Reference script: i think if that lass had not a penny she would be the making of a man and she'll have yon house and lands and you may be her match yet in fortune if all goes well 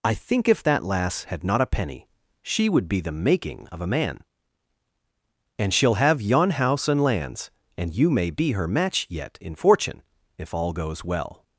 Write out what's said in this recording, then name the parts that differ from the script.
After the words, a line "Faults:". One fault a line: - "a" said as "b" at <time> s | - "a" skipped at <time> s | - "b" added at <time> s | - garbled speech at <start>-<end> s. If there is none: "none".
i think if that lass had not a penny she would be the making of a man and she'll have yon house and lands and you may be her match yet in fortune if all goes well
Faults:
none